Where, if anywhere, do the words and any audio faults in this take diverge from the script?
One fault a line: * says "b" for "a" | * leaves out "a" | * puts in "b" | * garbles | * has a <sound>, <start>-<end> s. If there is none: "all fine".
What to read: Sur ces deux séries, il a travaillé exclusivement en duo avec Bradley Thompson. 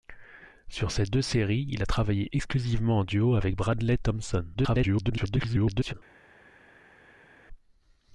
* garbles